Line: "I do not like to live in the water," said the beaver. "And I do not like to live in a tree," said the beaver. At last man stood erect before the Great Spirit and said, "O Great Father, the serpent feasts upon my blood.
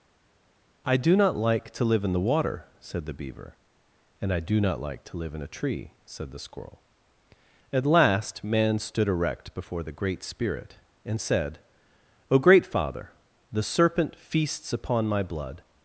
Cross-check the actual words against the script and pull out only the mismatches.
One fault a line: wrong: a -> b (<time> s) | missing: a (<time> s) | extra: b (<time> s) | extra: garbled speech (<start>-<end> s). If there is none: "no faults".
wrong: beaver -> squirrel (6.4 s)